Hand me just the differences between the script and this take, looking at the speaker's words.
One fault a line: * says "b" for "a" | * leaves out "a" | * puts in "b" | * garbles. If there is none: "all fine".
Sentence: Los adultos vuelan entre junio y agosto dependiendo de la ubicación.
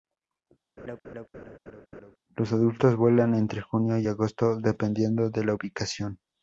all fine